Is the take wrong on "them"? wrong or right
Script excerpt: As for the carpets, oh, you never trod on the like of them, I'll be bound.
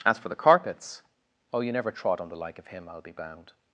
wrong